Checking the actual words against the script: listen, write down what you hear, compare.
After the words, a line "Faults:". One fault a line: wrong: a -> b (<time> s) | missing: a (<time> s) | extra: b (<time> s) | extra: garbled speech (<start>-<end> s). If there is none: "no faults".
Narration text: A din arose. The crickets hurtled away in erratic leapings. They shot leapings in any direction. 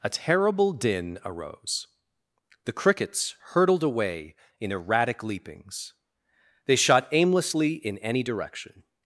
A terrible din arose. The crickets hurtled away in erratic leapings. They shot aimlessly in any direction.
Faults:
extra: terrible (0.1 s)
wrong: leapings -> aimlessly (7.1 s)